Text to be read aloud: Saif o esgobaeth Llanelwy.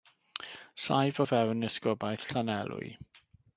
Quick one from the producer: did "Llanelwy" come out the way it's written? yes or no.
yes